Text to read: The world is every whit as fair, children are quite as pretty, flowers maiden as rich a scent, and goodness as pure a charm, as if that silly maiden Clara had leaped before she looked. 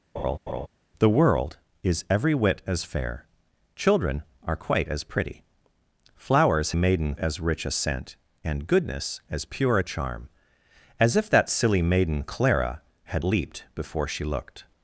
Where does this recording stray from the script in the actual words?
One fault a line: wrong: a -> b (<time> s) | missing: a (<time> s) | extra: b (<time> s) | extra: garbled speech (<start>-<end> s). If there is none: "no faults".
no faults